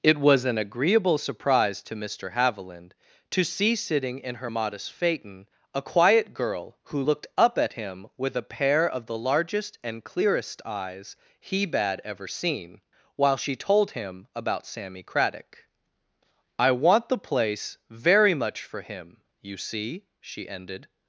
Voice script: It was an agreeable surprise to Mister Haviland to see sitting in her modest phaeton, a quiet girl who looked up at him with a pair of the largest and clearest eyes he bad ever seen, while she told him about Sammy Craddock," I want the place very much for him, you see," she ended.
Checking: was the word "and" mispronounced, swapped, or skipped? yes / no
no